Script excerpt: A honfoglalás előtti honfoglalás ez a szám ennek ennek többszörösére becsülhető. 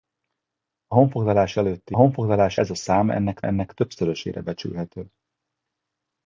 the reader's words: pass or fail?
pass